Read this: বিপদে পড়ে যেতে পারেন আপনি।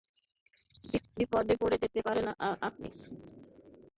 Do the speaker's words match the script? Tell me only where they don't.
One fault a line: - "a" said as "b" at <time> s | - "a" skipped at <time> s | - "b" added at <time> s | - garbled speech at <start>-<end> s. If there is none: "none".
none